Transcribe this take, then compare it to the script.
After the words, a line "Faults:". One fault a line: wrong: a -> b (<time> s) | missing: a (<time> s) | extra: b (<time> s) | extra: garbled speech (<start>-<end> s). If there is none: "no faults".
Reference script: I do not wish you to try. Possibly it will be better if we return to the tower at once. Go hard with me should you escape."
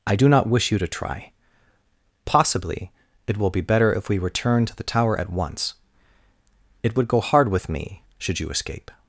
I do not wish you to try. Possibly it will be better if we return to the tower at once. It would go hard with me should you escape."
Faults:
extra: It would (6.8 s)